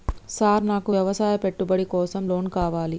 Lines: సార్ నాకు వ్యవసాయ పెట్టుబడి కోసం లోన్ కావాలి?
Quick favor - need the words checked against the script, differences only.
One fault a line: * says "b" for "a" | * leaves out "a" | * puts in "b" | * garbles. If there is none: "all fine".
all fine